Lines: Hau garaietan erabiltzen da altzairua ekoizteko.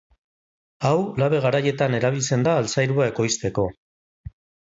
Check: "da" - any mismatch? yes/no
no